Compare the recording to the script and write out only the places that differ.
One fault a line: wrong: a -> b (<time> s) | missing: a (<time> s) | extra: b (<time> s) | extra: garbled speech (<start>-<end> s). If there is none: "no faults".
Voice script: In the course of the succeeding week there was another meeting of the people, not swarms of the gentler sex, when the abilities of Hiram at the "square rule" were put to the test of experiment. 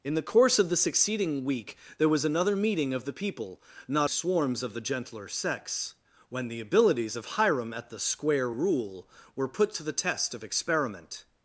no faults